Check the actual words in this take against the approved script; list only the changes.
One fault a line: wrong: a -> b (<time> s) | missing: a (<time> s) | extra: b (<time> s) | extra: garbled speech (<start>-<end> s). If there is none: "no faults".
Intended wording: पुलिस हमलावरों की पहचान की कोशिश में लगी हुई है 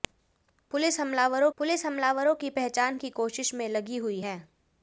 extra: पुलिस हमलावरों (1.6 s)